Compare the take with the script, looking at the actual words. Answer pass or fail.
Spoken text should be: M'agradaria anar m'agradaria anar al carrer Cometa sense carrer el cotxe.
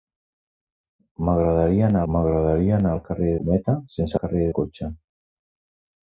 pass